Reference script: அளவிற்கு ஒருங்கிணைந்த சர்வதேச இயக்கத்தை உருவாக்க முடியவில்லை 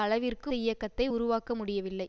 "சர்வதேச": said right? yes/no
no